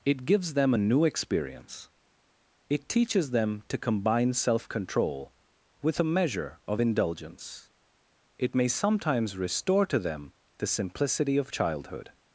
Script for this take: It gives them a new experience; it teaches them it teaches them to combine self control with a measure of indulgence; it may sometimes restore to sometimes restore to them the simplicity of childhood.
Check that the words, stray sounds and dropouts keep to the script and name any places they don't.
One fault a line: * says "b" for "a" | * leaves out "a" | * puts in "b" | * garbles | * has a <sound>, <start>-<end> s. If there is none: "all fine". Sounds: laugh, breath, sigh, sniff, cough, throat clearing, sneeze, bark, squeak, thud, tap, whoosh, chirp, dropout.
* leaves out "it teaches them"
* leaves out "sometimes restore to"